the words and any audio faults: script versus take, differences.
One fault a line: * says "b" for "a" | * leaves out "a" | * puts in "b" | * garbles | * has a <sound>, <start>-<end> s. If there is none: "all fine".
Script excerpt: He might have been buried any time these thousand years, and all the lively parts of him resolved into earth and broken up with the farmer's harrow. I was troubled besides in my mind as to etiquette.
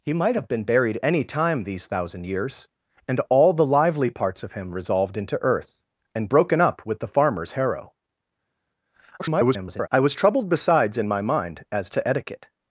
* garbles